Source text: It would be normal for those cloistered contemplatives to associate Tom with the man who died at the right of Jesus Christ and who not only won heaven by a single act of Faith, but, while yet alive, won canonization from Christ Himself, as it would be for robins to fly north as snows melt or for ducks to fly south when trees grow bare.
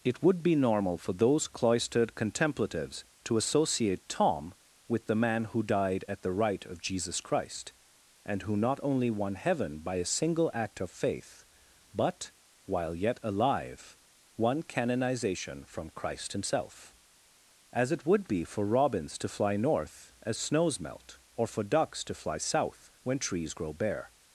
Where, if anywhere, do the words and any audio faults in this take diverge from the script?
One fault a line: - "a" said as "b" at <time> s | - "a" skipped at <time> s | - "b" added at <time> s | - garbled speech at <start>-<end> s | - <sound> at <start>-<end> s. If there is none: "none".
none